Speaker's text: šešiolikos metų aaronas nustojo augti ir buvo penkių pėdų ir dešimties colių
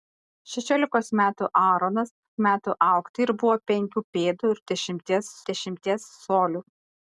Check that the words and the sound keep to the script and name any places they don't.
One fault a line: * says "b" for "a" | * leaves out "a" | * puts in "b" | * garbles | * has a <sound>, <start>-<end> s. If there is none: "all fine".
* says "metų" for "nustojo"
* puts in "dešimties"